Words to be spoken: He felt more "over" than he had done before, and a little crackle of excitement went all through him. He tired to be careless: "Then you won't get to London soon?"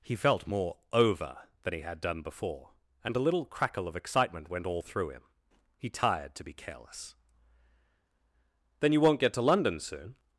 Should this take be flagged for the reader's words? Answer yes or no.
no